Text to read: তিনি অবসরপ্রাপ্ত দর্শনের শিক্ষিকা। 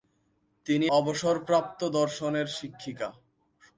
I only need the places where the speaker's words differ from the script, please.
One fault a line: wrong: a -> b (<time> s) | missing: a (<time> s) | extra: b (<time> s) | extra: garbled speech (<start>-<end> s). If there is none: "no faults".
no faults